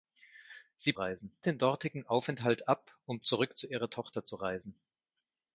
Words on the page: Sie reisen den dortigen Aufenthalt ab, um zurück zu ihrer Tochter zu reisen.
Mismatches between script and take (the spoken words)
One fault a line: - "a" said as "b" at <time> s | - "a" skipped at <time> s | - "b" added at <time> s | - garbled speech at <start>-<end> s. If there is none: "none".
none